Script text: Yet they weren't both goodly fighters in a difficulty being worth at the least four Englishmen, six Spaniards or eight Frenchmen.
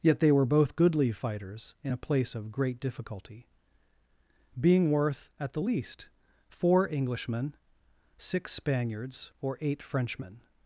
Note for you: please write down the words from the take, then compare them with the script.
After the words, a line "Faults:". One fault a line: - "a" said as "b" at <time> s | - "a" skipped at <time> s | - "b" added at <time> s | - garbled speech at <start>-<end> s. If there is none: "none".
Yet they were both goodly fighters in a place of great difficulty being worth at the least four Englishmen, six Spaniards or eight Frenchmen.
Faults:
- "weren't" said as "were" at 0.3 s
- "place of great" added at 2.0 s